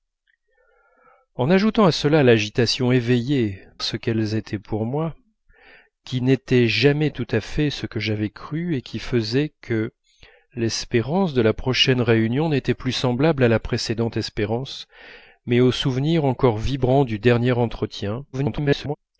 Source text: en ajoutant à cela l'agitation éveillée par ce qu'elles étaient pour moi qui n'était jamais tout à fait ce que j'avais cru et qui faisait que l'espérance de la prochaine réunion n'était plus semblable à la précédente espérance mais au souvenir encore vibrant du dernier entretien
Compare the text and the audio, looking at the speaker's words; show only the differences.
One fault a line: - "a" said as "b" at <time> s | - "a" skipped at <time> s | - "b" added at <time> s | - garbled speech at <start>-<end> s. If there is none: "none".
- "par" skipped at 3.6 s
- garbled speech at 18.3-19.0 s